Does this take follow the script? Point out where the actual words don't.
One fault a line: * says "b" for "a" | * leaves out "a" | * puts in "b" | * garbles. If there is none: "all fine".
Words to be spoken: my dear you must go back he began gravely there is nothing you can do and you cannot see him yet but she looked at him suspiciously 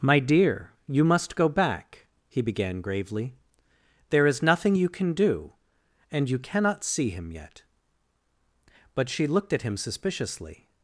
all fine